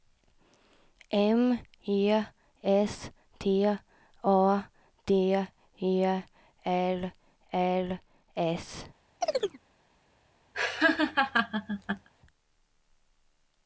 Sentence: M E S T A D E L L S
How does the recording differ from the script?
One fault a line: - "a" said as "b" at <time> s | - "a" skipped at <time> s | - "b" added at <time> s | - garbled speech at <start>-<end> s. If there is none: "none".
none